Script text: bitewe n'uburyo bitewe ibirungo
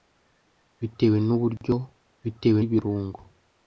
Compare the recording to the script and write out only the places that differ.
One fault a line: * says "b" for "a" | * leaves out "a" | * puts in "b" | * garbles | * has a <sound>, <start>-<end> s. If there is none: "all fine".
all fine